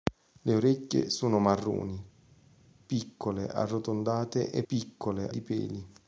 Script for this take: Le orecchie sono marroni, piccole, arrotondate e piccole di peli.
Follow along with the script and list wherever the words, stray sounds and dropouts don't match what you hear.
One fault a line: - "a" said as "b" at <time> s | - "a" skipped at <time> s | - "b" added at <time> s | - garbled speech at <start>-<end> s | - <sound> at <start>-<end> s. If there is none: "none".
none